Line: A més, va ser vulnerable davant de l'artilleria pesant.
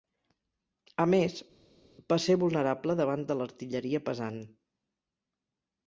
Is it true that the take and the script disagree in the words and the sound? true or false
false